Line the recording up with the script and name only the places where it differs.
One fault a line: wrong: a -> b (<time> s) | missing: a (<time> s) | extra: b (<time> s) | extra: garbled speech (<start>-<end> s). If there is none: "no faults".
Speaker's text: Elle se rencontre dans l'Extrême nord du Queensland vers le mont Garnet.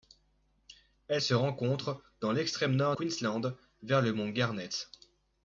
missing: du (3.0 s)